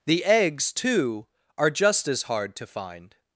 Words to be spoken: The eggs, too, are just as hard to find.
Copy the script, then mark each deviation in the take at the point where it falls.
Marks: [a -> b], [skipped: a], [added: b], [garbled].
The eggs, too, are just as hard to find.